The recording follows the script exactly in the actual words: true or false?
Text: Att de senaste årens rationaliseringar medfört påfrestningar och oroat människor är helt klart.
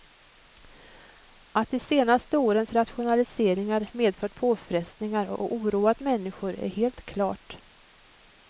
true